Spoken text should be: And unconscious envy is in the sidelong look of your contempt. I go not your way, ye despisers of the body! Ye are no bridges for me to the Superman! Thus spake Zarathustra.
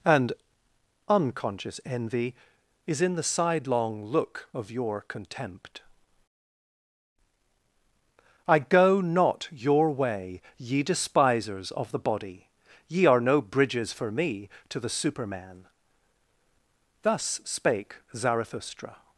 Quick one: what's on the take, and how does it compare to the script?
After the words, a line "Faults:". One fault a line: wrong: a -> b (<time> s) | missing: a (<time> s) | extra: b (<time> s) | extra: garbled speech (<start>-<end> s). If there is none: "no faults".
And unconscious envy is in the sidelong look of your contempt. I go not your way, ye despisers of the body! Ye are no bridges for me to the Superman! Thus spake Zarathustra.
Faults:
no faults